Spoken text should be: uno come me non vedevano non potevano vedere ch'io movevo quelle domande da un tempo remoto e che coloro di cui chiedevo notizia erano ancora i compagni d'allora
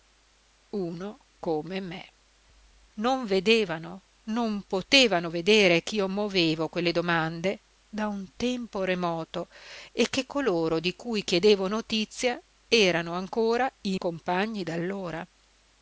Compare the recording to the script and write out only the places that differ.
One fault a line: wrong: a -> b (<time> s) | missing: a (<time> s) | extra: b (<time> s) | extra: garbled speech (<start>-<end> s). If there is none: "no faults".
no faults